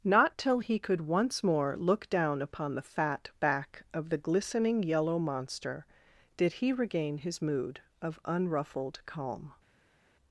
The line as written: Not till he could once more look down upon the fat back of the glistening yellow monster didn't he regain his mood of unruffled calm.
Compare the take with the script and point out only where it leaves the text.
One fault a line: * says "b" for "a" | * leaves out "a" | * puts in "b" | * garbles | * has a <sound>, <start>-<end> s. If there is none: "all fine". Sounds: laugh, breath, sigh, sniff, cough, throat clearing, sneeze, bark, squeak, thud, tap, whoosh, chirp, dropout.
* says "did" for "didn't"